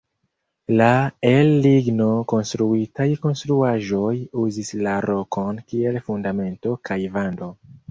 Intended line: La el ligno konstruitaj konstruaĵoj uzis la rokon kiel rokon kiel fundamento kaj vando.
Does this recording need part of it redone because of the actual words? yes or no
yes